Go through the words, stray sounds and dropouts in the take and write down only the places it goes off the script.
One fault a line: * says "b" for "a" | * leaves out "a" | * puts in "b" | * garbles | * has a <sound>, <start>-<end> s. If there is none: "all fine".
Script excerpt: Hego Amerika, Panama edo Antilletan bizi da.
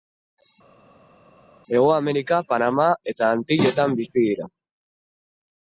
* says "eta" for "edo"
* says "dira" for "da"